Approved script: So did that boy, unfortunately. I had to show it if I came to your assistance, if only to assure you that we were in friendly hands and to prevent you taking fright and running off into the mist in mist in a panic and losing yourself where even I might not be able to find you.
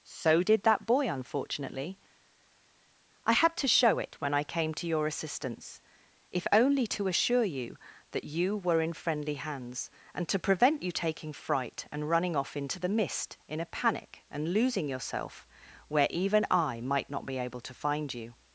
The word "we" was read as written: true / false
false